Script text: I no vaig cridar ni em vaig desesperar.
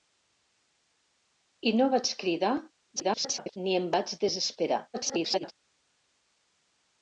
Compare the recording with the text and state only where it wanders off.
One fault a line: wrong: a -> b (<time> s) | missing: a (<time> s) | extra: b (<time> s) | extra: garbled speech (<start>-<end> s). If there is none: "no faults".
extra: garbled speech (3.0-3.6 s)
extra: garbled speech (4.9-5.5 s)